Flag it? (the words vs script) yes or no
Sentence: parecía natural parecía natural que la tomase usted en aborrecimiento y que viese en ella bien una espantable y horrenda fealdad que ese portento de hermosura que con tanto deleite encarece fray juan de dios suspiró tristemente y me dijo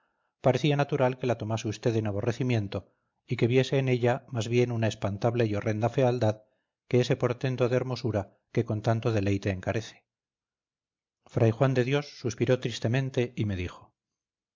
yes